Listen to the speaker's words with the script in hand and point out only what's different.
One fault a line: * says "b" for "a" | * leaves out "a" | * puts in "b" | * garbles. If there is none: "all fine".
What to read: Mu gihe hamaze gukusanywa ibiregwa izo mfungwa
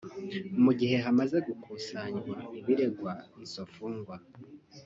all fine